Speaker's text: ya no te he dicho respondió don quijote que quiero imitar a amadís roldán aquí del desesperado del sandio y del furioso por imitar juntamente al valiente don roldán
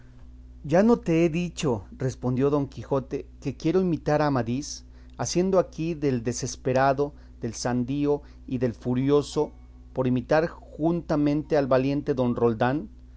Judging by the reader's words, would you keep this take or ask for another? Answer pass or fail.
fail